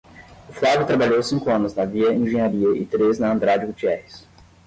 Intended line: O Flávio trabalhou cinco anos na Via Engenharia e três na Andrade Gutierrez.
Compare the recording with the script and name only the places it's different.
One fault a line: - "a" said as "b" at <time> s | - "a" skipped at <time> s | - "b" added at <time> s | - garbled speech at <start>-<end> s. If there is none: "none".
none